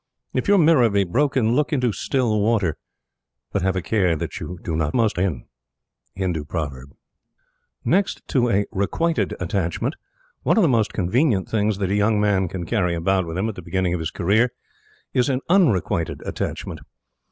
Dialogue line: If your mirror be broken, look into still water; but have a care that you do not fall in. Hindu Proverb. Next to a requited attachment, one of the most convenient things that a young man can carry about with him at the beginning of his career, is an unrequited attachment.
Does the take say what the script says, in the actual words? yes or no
no